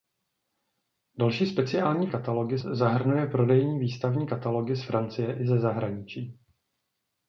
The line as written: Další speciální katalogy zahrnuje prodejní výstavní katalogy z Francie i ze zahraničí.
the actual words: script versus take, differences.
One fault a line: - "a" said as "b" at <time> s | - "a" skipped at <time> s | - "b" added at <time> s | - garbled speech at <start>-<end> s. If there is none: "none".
none